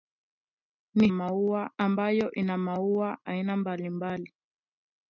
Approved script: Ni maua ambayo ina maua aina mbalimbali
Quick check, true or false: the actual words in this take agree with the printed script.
true